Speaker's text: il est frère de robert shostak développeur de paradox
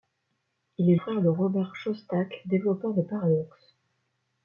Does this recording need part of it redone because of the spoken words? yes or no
no